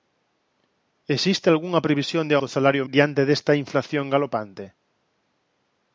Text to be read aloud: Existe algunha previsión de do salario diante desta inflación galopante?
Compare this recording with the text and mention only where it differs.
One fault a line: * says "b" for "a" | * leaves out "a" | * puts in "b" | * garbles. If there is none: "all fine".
all fine